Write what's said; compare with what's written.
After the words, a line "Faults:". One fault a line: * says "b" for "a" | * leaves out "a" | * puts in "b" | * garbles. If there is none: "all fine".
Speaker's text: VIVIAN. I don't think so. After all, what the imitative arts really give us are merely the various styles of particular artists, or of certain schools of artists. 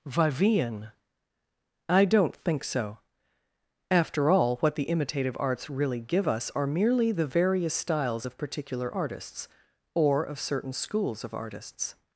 VIVIAN. I don't think so. After all, what the imitative arts really give us are merely the various styles of particular artists, or of certain schools of artists.
Faults:
all fine